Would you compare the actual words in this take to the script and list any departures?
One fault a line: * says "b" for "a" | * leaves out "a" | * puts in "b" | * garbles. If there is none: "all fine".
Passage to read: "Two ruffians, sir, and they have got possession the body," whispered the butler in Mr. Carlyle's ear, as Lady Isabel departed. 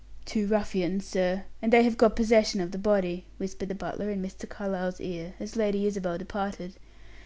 * puts in "of"